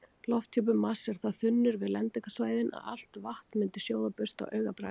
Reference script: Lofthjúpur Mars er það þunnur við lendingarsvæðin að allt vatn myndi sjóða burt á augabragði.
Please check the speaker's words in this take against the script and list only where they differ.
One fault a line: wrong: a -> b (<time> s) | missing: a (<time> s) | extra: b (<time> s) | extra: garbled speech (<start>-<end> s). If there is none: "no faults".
no faults